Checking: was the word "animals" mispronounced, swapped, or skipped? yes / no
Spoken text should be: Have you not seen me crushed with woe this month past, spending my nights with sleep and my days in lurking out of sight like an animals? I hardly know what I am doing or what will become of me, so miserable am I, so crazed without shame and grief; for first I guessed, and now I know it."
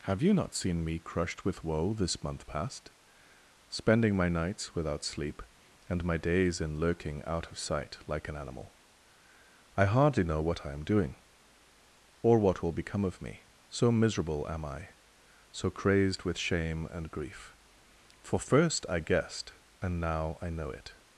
yes